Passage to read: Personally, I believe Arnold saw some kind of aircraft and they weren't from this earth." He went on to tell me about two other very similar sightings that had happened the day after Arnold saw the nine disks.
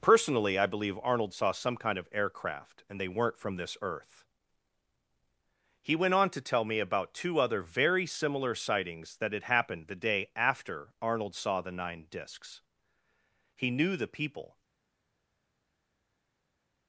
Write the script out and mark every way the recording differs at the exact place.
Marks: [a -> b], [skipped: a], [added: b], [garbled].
Personally, I believe Arnold saw some kind of aircraft and they weren't from this earth." He went on to tell me about two other very similar sightings that had happened the day after Arnold saw the nine disks. [added: He knew the people]